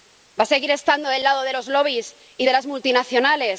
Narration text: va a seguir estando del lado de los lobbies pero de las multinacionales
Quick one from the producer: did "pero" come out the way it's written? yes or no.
no